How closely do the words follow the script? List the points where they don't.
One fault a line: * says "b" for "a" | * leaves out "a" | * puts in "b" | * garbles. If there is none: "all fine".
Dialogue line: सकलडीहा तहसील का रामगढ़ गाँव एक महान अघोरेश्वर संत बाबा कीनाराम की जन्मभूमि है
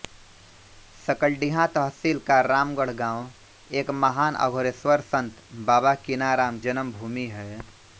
* leaves out "की"